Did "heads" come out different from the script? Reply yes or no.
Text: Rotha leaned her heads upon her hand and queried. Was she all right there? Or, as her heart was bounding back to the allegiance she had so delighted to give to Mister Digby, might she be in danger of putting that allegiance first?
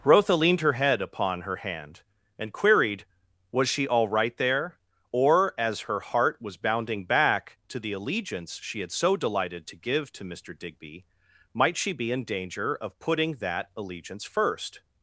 yes